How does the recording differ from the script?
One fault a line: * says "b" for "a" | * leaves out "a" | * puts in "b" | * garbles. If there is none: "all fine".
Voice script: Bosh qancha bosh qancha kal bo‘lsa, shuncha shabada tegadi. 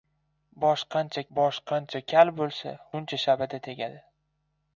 all fine